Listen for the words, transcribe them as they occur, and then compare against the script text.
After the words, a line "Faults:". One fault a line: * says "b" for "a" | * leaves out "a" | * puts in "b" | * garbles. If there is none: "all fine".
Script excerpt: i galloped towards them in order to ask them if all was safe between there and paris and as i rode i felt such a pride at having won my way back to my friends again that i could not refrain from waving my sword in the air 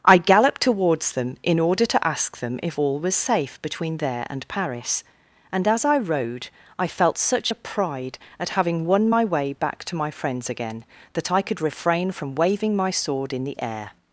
i galloped towards them in order to ask them if all was safe between there and paris and as i rode i felt such a pride at having won my way back to my friends again that i could refrain from waving my sword in the air
Faults:
* leaves out "not"